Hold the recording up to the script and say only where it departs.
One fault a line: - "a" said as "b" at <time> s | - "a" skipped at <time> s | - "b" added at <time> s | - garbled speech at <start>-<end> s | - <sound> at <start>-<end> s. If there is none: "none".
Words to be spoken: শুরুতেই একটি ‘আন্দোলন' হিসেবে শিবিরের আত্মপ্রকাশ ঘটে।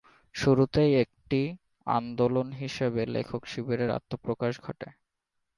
- "লেখক" added at 3.1 s